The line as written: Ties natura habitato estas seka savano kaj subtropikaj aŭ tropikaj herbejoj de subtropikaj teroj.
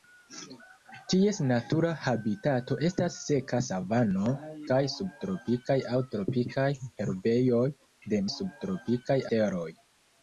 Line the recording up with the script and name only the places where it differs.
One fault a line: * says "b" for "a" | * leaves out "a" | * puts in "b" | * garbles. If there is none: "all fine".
all fine